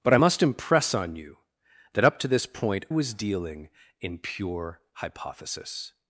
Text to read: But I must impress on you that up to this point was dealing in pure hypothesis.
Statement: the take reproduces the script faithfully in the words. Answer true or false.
true